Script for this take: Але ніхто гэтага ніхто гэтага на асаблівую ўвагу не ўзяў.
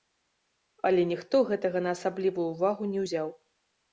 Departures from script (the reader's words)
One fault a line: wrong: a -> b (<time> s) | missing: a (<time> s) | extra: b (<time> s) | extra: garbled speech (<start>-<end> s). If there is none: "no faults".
missing: ніхто гэтага (1.8 s)